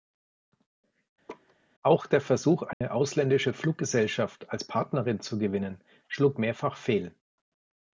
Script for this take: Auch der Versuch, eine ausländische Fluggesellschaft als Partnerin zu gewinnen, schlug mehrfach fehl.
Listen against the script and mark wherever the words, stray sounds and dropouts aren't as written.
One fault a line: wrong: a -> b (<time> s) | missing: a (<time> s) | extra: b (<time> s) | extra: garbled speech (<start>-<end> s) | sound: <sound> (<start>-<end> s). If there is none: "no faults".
sound: laugh (1.3-1.6 s)
sound: dropout (2.7-2.8 s)